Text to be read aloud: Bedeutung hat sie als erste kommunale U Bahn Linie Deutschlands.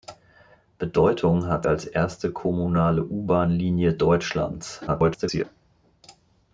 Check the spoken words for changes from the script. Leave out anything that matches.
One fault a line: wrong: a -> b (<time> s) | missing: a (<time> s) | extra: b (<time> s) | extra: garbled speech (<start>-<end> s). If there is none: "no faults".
missing: sie (1.7 s)
extra: garbled speech (4.9-5.4 s)